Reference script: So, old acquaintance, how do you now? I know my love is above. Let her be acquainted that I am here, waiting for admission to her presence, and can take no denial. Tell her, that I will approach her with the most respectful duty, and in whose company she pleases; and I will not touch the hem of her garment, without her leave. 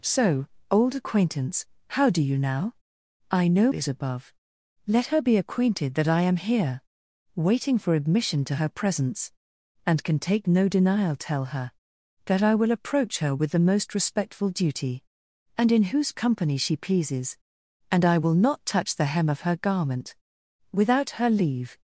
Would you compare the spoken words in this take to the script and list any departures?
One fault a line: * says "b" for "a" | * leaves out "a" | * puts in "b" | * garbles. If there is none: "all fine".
* leaves out "my love"